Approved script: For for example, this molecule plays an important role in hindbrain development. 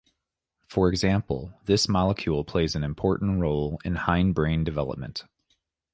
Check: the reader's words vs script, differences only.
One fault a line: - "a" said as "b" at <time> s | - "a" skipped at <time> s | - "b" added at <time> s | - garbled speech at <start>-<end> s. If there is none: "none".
- "for" skipped at 0.9 s